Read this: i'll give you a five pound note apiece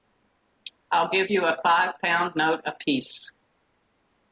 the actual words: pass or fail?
pass